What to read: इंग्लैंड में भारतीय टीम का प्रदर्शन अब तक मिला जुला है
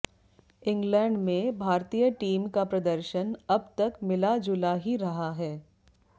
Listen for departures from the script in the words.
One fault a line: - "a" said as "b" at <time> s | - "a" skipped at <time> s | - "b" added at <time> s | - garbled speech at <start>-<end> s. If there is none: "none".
- "ही रहा" added at 4.8 s